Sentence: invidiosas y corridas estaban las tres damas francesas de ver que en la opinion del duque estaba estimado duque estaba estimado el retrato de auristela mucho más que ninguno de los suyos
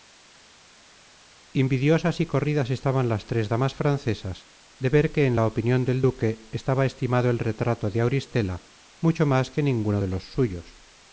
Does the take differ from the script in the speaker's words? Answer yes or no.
yes